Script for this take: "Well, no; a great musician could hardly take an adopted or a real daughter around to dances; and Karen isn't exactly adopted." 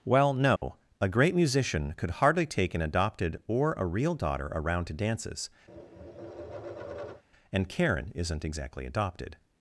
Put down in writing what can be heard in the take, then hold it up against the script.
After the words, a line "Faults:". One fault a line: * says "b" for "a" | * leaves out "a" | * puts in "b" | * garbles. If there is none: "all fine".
"Well, no; a great musician could hardly take an adopted or a real daughter around to dances; and Karen isn't exactly adopted."
Faults:
all fine